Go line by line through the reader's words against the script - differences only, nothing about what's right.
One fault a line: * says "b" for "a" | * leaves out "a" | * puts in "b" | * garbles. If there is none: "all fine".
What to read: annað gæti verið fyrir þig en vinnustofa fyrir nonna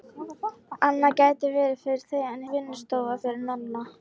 all fine